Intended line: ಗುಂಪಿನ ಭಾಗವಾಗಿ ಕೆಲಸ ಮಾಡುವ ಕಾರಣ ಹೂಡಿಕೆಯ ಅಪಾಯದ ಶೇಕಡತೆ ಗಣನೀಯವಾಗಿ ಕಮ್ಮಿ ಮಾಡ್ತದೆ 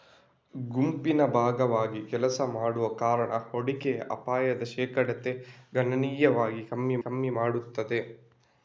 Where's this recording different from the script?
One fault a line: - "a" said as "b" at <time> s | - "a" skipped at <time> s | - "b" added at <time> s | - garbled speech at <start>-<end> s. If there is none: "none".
- "ಕಮ್ಮಿ" added at 7.0 s